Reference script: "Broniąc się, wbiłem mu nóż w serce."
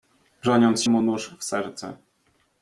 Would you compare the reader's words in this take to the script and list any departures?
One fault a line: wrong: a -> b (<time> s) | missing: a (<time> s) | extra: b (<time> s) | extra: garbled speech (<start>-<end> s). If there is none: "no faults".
missing: się wbiłem (0.8 s)